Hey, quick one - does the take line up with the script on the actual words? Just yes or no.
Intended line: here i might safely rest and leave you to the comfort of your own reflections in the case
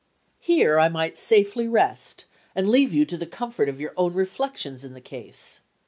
yes